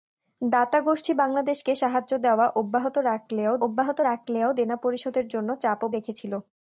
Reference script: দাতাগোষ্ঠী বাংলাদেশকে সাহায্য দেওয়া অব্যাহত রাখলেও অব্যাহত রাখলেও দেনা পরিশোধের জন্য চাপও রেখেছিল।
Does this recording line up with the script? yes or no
yes